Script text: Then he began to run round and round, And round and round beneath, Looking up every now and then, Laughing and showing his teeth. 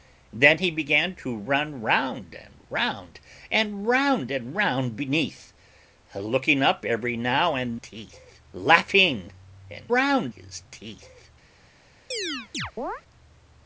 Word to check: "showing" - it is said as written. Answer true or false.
false